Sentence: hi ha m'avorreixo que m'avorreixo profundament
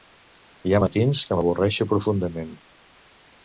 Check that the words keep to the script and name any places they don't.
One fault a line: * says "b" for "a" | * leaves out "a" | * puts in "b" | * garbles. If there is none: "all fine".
* says "matins" for "m'avorreixo"